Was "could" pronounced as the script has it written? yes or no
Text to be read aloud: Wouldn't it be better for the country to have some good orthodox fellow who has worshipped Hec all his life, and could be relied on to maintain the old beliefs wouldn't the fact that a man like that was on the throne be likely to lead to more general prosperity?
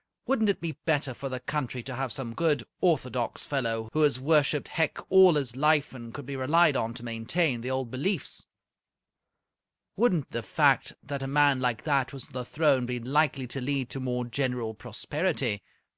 yes